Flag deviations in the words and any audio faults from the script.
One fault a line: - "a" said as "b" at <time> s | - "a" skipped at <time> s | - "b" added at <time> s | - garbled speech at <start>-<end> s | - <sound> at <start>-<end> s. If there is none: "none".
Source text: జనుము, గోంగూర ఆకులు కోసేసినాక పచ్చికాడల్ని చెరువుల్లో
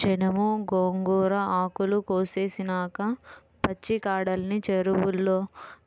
none